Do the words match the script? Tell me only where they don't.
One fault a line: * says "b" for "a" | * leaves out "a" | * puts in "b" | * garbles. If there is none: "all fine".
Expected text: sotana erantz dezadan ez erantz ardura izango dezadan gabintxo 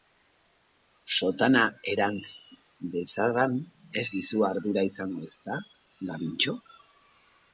* says "dizu" for "erantz"
* says "ezta" for "dezadan"